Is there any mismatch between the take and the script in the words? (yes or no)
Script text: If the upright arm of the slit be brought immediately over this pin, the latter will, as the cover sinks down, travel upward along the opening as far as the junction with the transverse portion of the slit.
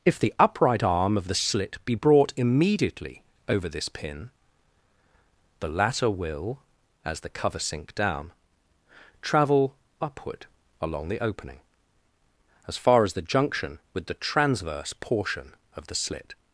yes